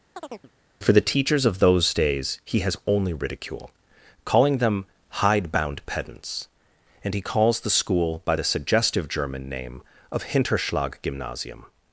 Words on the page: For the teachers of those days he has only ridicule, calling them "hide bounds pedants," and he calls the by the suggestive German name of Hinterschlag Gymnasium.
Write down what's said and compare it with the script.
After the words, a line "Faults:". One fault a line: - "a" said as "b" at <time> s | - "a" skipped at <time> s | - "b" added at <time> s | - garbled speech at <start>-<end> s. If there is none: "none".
For the teachers of those days he has only ridicule, calling them "hide bound pedants," and he calls the school by the suggestive German name of Hinterschlag Gymnasium.
Faults:
- "bounds" said as "bound" at 5.5 s
- "school" added at 7.7 s